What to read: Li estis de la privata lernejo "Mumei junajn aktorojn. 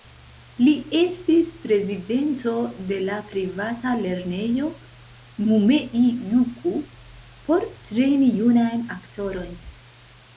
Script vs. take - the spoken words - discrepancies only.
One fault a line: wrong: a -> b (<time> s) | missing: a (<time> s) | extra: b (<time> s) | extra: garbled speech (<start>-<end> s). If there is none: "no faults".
extra: prezidento (1.6 s)
extra: juku por trejni (6.3 s)